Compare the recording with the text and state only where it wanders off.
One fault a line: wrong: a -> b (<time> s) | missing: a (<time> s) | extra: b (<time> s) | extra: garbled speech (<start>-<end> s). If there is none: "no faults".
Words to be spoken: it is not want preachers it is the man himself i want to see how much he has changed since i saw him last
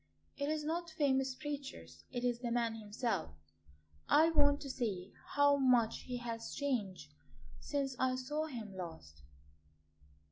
wrong: want -> famous (0.9 s)